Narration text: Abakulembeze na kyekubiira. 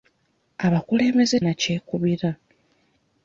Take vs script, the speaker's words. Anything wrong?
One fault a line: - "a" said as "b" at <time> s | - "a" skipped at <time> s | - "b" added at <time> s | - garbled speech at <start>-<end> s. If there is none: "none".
none